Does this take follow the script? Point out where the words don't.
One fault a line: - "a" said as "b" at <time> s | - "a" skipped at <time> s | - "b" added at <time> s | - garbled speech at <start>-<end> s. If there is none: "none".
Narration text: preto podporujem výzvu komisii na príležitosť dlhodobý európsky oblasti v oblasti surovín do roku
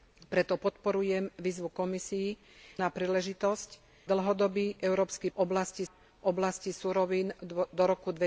none